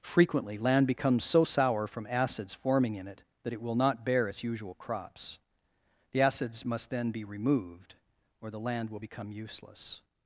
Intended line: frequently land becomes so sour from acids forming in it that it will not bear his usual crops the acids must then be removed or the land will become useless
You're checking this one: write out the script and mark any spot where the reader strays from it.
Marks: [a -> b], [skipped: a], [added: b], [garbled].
frequently land becomes so sour from acids forming in it that it will not bear [his -> its] usual crops the acids must then be removed or the land will become useless